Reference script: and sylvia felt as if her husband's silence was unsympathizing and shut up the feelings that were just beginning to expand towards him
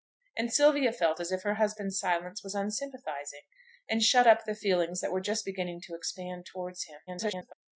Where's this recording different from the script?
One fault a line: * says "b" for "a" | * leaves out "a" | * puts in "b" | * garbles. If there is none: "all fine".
* garbles